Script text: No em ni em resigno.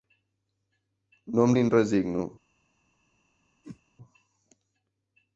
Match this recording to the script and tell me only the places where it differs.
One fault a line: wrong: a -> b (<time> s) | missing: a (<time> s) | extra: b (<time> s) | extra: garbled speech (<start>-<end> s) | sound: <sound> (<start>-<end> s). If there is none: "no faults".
sound: whoosh (3.6-3.8 s)